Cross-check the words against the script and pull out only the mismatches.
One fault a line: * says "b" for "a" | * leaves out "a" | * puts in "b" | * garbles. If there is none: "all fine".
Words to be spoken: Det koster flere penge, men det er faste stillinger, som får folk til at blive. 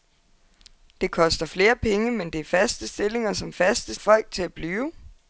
* says "faste" for "får"